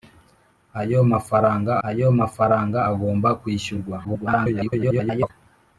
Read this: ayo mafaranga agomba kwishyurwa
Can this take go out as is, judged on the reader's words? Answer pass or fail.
fail